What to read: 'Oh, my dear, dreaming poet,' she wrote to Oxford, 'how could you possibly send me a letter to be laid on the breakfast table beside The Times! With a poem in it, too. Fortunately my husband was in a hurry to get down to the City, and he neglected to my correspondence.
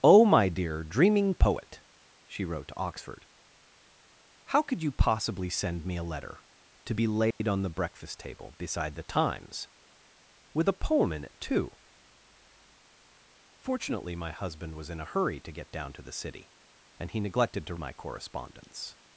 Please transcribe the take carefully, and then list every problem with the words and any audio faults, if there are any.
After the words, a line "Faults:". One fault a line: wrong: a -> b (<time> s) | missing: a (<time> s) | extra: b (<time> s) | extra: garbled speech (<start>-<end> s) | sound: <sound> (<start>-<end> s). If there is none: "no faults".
'Oh, my dear, dreaming poet,' she wrote to Oxford, 'how could you possibly send me a letter to be laid on the breakfast table beside The Times! With a poem in it, too. Fortunately my husband was in a hurry to get down to the City, and he neglected to my correspondence.
Faults:
sound: dropout (7.3-7.4 s)